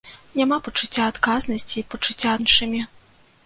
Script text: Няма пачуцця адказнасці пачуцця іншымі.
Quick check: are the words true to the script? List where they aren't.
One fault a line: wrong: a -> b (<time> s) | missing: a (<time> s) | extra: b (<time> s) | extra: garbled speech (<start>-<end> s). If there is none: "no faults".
no faults